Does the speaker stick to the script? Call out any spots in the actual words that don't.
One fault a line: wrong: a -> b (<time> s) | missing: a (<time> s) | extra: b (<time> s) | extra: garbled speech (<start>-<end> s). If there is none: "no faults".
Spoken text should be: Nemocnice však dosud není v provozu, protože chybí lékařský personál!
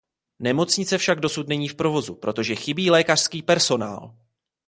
no faults